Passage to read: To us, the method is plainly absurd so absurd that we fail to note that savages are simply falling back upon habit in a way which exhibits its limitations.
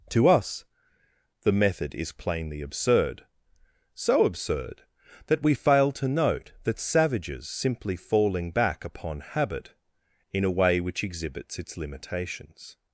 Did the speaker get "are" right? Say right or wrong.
wrong